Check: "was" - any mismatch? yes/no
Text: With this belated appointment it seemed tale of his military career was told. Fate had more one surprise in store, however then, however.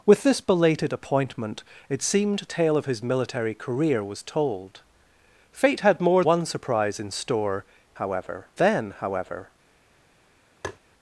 no